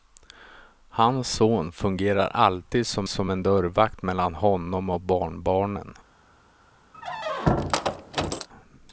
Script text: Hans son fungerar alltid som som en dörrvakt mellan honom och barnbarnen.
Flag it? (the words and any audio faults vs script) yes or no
yes